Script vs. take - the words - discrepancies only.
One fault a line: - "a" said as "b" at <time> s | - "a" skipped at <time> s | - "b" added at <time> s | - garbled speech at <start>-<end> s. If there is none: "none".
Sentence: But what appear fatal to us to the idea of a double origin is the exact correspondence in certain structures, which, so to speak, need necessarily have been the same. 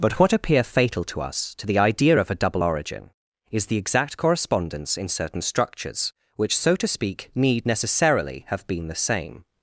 none